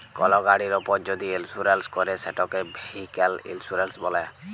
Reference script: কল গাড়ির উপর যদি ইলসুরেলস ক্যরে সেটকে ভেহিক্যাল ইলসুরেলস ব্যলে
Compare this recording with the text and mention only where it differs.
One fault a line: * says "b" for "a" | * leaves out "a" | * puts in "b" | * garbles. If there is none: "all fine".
all fine